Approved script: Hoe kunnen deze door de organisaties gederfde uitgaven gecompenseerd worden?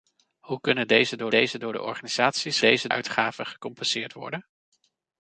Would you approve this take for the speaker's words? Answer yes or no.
no